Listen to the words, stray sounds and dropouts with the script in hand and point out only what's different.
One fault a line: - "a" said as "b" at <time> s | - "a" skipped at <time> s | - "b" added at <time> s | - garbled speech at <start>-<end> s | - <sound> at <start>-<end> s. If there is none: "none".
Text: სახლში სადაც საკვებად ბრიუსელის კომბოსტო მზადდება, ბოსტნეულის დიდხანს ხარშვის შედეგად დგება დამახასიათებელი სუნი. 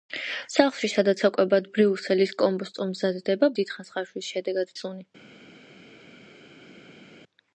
- "ბოსტნეულის" skipped at 3.5 s
- "დგება დამახასიათებელი" skipped at 4.7 s